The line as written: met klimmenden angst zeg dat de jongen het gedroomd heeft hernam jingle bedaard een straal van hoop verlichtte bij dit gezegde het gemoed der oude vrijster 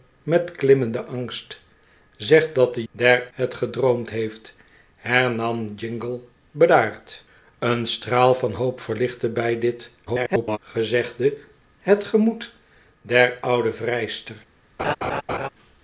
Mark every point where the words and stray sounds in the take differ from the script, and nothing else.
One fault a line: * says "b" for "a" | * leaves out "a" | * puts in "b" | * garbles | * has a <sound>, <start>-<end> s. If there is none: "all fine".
* says "der" for "jongen"
* garbles
* has a laugh, 14.8-15.5 s